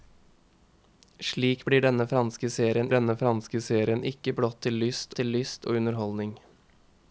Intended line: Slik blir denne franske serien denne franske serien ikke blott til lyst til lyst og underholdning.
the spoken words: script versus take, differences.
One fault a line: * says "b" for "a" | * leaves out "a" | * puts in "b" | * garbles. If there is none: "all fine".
all fine